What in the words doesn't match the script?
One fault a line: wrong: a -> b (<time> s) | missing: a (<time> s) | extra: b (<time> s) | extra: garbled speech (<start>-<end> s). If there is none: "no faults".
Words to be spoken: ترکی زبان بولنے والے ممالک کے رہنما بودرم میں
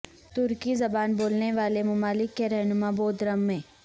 no faults